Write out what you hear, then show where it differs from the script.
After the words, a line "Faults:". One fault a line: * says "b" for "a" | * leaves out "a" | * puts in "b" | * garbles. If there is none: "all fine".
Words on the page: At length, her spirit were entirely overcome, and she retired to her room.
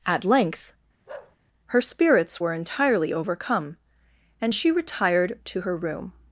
At length, her spirits were entirely overcome, and she retired to her room.
Faults:
* says "spirits" for "spirit"